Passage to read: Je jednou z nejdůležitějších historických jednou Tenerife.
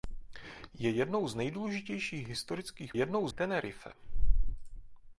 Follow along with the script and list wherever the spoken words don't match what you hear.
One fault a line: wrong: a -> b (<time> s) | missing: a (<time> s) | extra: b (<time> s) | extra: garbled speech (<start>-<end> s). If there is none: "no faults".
no faults